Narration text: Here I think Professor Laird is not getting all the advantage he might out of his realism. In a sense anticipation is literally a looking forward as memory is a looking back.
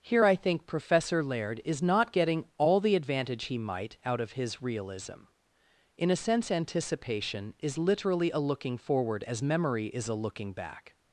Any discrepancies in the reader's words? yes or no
no